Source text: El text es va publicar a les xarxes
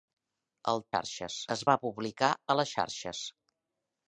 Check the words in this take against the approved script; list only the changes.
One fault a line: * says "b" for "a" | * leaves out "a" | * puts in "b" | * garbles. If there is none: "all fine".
* says "xarxes" for "text"